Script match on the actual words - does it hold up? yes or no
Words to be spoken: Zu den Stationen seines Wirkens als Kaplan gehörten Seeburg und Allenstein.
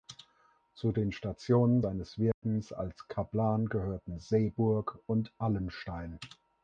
yes